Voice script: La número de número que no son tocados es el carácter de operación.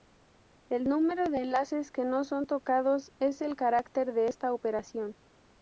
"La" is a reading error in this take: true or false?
true